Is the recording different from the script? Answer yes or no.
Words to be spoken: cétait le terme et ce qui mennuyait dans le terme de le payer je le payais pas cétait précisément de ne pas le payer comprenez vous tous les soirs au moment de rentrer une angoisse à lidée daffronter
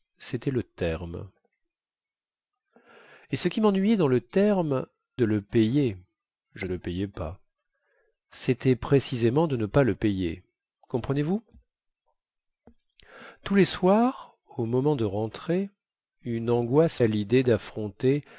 no